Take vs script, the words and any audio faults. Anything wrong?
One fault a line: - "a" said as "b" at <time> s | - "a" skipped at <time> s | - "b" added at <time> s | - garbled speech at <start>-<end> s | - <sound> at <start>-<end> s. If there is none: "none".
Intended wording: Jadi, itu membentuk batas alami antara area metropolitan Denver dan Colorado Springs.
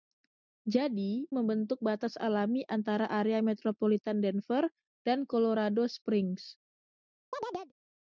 - "itu" skipped at 1.3 s
- chirp at 7.3-7.7 s